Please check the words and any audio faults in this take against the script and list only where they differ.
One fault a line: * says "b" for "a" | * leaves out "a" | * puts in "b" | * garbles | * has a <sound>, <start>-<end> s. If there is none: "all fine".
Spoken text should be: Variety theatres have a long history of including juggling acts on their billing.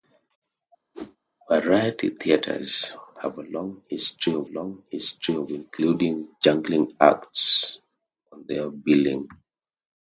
* has a whoosh, 0.9-1.2 s
* puts in "long history of"